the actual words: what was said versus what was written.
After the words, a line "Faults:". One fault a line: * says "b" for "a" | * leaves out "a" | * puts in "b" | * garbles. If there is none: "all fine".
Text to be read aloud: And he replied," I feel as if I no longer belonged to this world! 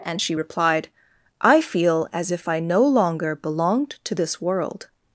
And she replied," I feel as if I no longer belonged to this world!
Faults:
* says "she" for "he"